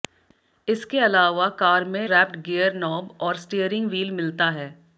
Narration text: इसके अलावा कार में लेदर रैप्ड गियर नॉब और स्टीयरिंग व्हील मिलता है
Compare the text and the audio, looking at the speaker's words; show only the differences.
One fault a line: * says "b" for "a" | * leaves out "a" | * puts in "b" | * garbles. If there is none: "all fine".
* leaves out "लेदर"